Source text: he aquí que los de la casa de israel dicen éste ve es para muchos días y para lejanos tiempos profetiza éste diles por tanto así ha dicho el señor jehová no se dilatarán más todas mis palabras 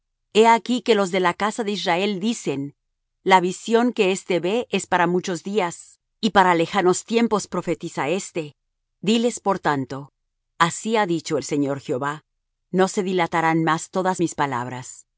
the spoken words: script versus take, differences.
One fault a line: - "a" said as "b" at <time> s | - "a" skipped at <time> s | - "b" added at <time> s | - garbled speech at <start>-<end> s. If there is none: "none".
- "la visión que" added at 3.2 s